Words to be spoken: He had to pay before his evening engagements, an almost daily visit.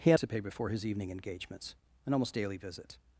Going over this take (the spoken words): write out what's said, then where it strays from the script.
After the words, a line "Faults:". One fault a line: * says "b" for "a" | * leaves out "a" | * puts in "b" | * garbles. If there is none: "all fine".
He had to pay before his evening engagements, an almost daily visit.
Faults:
all fine